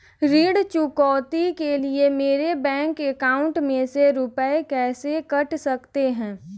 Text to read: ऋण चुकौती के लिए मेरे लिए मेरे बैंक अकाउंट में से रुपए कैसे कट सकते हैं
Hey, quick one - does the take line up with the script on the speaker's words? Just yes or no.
no